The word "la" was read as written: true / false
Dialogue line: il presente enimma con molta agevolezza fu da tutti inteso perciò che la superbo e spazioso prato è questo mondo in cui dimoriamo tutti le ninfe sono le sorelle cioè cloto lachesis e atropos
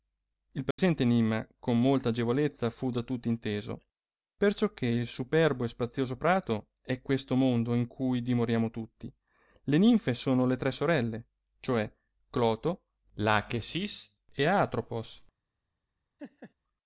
false